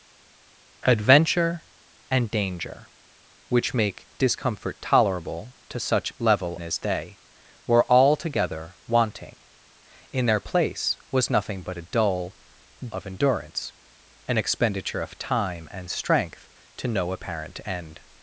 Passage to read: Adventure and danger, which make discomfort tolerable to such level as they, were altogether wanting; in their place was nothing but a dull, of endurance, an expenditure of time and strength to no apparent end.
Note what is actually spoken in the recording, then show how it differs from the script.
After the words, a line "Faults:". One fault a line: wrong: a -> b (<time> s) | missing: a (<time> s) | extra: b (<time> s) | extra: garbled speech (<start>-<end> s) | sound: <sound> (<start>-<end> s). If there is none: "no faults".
Adventure and danger, which make discomfort tolerable to such level as they, were altogether wanting; in their place was nothing but a dull, of endurance, an expenditure of time and strength to no apparent end.
Faults:
no faults